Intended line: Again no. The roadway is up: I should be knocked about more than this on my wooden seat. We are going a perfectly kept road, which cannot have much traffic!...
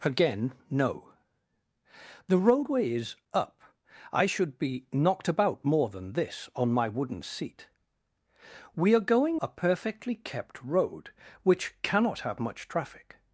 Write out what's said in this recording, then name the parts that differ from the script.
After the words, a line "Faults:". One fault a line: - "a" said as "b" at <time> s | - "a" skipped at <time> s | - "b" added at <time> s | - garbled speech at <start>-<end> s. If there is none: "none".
Again no. The roadway is up: I should be knocked about more than this on my wooden seat. We are going a perfectly kept road, which cannot have much traffic!...
Faults:
none